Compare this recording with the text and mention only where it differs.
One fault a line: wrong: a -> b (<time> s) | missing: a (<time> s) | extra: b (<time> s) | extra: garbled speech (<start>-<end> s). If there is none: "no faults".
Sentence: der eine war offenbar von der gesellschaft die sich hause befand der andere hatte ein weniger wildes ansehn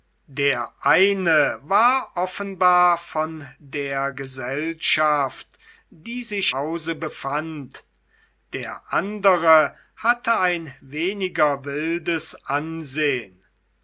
no faults